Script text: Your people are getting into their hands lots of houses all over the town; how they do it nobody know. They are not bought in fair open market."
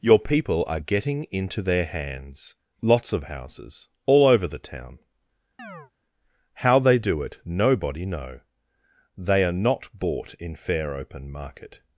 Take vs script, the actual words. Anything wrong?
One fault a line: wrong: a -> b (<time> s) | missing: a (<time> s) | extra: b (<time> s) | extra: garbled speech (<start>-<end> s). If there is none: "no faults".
no faults